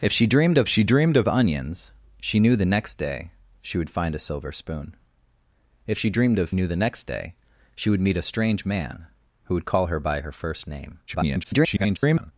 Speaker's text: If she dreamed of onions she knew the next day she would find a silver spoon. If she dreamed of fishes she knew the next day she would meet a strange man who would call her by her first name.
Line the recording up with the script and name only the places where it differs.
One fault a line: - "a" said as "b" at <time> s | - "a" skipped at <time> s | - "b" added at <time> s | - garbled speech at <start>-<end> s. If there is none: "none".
- "she dreamed of" added at 0.7 s
- "fishes she" skipped at 6.5 s
- garbled speech at 11.1-12.3 s